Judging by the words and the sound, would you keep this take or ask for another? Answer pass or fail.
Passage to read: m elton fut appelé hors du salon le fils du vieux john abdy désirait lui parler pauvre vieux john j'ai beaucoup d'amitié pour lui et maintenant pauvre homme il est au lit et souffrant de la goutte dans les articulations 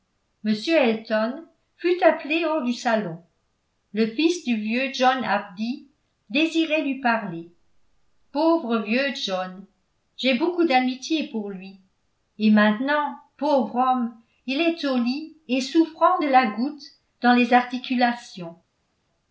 pass